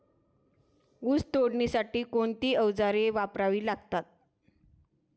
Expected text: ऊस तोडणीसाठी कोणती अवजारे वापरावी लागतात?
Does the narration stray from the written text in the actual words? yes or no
no